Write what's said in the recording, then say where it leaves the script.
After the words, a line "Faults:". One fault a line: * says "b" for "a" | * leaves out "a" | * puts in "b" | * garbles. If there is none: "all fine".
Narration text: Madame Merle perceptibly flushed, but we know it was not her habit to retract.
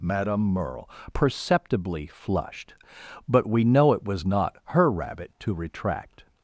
Madame Merle perceptibly flushed, but we know it was not her rabbit to retract.
Faults:
* says "rabbit" for "habit"